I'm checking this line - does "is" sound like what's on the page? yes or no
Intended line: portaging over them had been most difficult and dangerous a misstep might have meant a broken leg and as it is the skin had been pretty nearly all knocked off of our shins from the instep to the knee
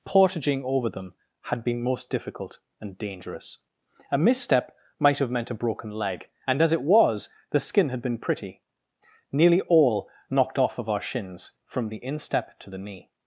no